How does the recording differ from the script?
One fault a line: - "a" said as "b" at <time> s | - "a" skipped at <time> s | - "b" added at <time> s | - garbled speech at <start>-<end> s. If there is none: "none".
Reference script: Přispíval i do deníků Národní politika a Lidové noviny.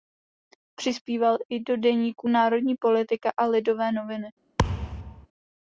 none